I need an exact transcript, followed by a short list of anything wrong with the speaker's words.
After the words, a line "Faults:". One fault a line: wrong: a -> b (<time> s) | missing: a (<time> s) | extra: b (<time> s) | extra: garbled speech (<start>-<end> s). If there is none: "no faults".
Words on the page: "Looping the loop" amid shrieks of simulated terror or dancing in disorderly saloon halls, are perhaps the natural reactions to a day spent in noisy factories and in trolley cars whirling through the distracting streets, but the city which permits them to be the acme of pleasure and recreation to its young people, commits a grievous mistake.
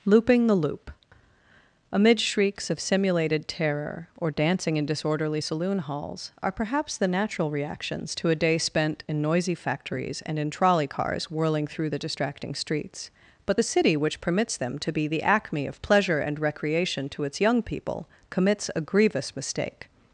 "Looping the loop" amid shrieks of simulated terror or dancing in disorderly saloon halls, are perhaps the natural reactions to a day spent in noisy factories and in trolley cars whirling through the distracting streets, but the city which permits them to be the acme of pleasure and recreation to its young people, commits a grievous mistake.
Faults:
no faults